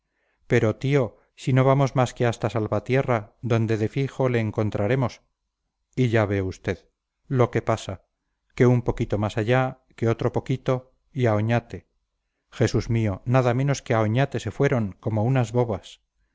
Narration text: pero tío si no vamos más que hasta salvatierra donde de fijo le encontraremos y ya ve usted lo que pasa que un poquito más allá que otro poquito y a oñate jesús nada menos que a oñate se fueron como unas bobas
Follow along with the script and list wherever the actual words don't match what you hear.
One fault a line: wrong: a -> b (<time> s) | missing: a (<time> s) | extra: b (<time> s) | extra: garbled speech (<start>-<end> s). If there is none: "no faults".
extra: mío (12.9 s)